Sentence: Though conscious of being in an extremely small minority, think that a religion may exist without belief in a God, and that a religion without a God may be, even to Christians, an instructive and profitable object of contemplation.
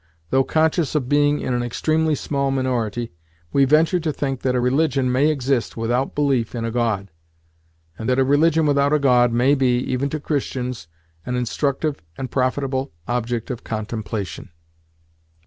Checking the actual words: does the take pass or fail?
fail